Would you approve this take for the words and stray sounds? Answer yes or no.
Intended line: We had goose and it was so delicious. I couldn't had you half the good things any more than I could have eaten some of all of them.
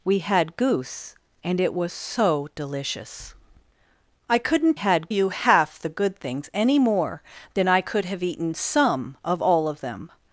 yes